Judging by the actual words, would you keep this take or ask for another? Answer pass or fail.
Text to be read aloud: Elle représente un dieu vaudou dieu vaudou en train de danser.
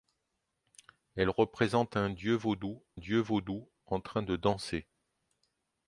pass